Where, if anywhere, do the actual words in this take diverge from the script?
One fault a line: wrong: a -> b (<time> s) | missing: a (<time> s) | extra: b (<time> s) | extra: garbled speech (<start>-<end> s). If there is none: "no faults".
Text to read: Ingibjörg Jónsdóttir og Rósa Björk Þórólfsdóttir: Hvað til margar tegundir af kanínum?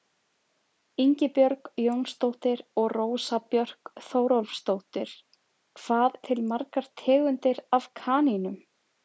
no faults